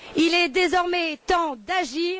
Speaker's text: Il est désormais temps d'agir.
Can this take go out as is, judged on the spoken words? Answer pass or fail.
pass